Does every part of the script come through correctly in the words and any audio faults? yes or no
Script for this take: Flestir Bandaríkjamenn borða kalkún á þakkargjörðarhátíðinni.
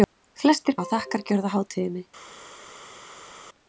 no